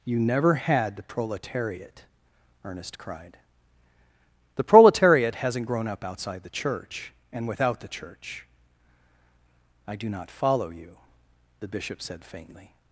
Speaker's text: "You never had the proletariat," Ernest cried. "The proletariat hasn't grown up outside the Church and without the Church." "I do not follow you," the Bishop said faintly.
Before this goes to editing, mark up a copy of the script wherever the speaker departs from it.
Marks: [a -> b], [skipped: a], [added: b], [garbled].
"You never had the proletariat," Ernest cried. "The proletariat hasn't grown up outside the Church and without the Church." "I do not follow you," the Bishop said faintly.